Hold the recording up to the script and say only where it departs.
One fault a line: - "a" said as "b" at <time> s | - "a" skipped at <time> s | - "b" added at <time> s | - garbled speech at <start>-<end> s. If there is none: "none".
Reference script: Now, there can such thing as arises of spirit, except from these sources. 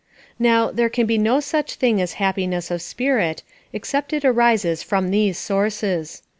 - "be no" added at 1.1 s
- "arises" said as "happiness" at 2.1 s
- "it arises" added at 4.1 s